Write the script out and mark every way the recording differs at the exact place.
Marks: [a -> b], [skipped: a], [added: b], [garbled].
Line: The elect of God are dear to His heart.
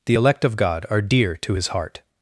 The elect of God are dear to His heart.